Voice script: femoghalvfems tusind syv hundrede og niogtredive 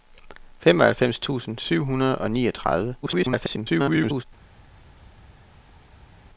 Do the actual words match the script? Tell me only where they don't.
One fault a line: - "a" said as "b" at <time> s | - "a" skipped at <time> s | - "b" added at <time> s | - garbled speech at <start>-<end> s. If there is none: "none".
- garbled speech at 3.0-4.2 s